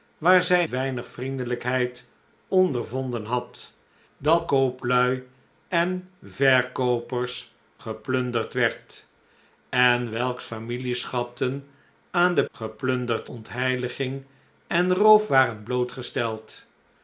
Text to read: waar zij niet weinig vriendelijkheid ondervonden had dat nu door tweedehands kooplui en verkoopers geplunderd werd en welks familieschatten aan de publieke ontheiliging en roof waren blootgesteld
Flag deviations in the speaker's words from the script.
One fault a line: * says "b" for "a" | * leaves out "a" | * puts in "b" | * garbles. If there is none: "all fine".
* leaves out "niet"
* leaves out "nu door tweedehands"
* says "geplunderd" for "publieke"